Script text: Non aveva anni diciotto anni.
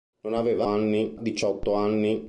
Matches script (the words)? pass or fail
pass